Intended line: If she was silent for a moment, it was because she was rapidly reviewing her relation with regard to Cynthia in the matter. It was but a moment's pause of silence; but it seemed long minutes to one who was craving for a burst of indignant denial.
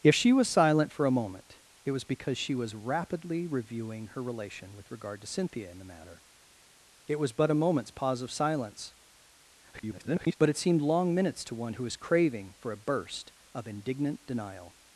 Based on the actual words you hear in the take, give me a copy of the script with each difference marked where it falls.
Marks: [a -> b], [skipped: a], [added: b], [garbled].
If she was silent for a moment, it was because she was rapidly reviewing her relation with regard to Cynthia in the matter. It was but a moment's pause of silence; [garbled] but it seemed long minutes to one who was craving for a burst of indignant denial.